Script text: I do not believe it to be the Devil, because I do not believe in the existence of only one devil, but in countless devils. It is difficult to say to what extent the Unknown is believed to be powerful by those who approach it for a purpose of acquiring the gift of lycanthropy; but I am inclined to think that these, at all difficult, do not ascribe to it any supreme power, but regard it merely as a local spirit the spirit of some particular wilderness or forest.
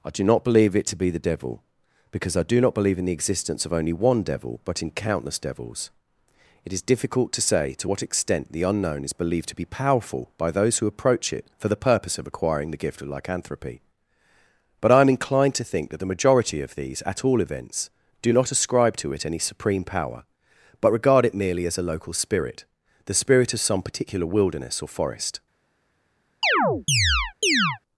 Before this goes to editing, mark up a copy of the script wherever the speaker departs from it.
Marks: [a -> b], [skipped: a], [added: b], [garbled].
I do not believe it to be the Devil, because I do not believe in the existence of only one devil, but in countless devils. It is difficult to say to what extent the Unknown is believed to be powerful by those who approach it for [a -> the] purpose of acquiring the gift of lycanthropy; but I am inclined to think that [added: the majority of] these, at all [difficult, -> events] do not ascribe to it any supreme power, but regard it merely as a local spirit the spirit of some particular wilderness or forest.